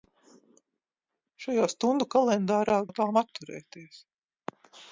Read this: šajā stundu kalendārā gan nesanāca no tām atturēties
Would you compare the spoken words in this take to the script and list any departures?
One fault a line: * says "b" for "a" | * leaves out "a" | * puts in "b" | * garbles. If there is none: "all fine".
* leaves out "gan nesanāca"